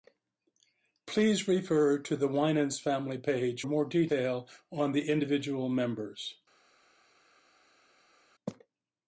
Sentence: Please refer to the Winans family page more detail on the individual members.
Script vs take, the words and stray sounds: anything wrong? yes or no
no